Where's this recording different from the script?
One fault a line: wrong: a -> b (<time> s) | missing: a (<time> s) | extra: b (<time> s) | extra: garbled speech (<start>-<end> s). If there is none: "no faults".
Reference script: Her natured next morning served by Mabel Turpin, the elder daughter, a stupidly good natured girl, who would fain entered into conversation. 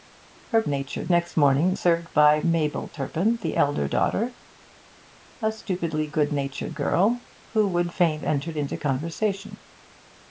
no faults